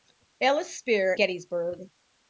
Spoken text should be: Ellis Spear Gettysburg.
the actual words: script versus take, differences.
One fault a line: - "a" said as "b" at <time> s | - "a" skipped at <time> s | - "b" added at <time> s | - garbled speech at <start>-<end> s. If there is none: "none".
none